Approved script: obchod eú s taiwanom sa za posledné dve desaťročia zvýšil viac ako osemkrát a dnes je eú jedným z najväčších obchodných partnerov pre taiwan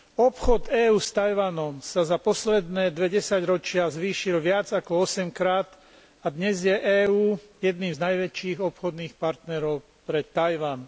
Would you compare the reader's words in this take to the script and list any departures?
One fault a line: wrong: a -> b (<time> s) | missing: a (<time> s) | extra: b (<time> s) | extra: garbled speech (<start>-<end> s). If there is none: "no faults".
no faults